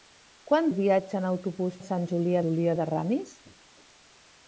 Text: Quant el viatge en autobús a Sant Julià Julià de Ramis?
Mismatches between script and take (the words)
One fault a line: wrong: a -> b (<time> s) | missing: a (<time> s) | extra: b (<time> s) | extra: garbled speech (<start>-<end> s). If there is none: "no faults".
no faults